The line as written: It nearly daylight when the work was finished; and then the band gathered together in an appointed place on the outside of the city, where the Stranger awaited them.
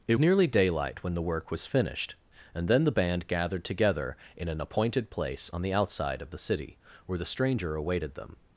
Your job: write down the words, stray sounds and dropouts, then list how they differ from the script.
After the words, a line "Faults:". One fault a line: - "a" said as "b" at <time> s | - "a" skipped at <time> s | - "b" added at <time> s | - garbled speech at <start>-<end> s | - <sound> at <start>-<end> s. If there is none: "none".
It nearly daylight when the work was finished; and then the band gathered together in an appointed place on the outside of the city, where the Stranger awaited them.
Faults:
none